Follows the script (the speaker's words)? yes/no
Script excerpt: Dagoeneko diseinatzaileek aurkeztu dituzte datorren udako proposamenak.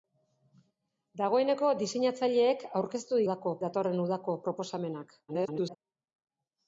no